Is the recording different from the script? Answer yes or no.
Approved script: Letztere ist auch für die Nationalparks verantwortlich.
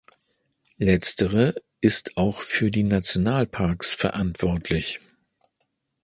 no